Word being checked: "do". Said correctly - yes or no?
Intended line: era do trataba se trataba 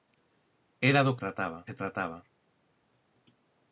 yes